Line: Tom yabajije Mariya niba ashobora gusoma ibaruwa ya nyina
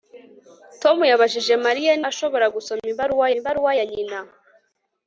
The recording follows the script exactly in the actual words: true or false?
false